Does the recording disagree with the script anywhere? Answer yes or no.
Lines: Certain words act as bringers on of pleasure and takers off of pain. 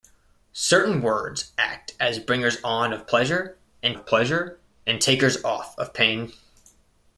yes